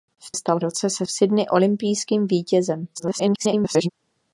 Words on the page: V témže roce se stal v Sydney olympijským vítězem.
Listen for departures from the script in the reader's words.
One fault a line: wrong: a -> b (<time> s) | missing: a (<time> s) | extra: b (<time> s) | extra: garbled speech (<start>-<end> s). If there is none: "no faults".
wrong: témže -> stal (0.3 s)
missing: stal (1.1 s)
extra: garbled speech (2.9-3.9 s)